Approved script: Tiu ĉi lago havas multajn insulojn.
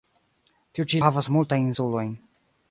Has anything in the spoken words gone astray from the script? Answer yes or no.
yes